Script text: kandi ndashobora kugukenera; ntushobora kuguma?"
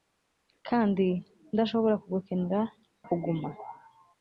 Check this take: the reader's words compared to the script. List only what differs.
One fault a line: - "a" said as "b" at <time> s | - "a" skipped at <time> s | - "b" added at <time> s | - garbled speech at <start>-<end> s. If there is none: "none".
- "ntushobora" skipped at 2.6 s